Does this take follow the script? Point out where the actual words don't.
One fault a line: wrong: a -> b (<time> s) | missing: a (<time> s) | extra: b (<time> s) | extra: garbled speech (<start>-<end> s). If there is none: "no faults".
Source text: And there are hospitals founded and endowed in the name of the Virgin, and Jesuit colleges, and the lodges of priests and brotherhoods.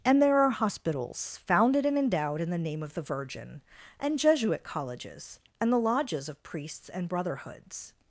no faults